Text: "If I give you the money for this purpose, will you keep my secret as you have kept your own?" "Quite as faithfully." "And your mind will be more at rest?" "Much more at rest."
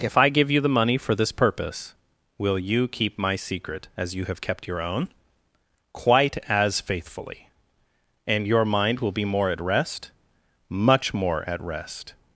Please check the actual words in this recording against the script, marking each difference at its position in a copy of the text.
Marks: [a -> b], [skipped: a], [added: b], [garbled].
"If I give you the money for this purpose, will you keep my secret as you have kept your own?" "Quite as faithfully." "And your mind will be more at rest?" "Much more at rest."